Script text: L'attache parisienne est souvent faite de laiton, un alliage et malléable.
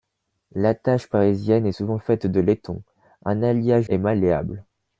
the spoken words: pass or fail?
pass